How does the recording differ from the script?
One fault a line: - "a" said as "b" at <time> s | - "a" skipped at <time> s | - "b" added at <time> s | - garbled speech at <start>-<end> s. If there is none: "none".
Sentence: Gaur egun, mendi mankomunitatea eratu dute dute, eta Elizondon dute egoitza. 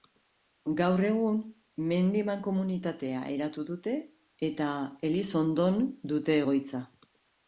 - "dute" skipped at 4.0 s